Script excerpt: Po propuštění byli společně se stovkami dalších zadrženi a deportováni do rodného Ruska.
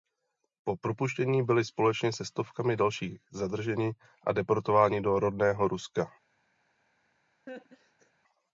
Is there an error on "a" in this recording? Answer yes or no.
no